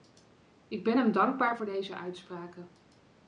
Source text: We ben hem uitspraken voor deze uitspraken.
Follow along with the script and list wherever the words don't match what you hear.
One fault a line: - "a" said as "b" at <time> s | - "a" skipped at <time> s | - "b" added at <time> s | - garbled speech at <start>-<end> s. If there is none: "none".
- "We" said as "Ik" at 0.7 s
- "uitspraken" said as "dankbaar" at 1.1 s